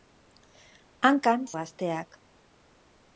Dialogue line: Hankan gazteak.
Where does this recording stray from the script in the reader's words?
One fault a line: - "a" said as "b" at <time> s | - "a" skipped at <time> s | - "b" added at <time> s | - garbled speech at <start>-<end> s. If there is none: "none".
none